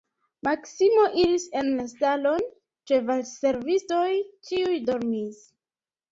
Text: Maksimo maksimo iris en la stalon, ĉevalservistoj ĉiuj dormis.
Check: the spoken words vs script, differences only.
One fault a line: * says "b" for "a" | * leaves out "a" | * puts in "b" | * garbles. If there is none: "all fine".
* leaves out "maksimo"